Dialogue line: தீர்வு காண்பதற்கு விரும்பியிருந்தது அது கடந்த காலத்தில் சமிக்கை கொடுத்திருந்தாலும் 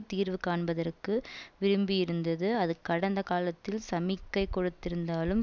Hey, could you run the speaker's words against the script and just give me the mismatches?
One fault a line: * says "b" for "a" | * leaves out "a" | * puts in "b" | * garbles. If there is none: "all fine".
all fine